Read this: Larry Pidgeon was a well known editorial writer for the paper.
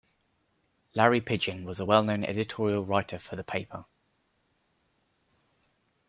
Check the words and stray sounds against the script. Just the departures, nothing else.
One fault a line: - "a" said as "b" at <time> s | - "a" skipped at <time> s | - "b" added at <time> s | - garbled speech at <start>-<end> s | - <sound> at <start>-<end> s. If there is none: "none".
none